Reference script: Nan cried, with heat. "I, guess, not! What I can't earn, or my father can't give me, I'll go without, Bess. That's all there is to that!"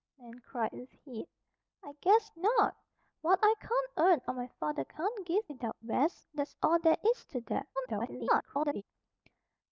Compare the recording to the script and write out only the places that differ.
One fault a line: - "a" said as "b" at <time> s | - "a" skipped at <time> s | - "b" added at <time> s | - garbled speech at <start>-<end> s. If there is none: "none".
- "me I'll go" skipped at 5.5 s
- garbled speech at 7.8-8.8 s